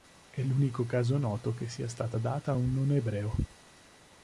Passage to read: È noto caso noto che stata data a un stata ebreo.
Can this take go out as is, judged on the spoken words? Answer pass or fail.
fail